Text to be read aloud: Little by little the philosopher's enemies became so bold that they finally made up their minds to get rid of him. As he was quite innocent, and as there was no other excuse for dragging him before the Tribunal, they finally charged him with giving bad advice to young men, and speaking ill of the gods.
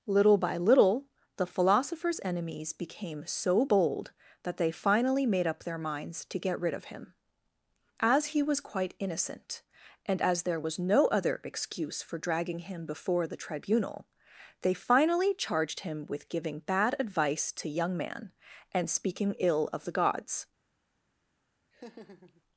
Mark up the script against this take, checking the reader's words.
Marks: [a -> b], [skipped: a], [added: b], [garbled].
Little by little the philosopher's enemies became so bold that they finally made up their minds to get rid of him. As he was quite innocent, and as there was no other excuse for dragging him before the Tribunal, they finally charged him with giving bad advice to young [men, -> man] and speaking ill of the gods.